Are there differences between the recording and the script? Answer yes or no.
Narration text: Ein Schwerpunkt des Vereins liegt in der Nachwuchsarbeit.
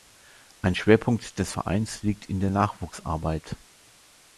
no